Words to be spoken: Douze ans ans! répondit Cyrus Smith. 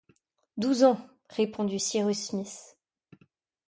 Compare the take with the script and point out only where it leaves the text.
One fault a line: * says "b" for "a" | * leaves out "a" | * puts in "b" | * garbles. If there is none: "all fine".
* leaves out "ans"